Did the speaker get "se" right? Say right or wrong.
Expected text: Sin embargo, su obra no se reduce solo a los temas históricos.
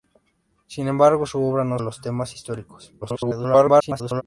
wrong